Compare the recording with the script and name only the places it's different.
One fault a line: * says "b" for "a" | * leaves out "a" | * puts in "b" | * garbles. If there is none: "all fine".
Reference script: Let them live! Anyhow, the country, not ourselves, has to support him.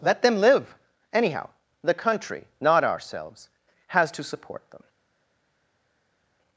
* says "them" for "him"